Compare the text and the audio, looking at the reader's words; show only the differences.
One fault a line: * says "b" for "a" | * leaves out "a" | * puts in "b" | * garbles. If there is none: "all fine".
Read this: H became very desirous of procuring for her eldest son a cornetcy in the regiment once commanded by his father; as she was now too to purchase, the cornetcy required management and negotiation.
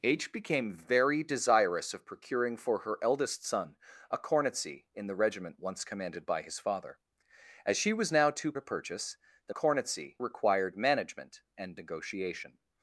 all fine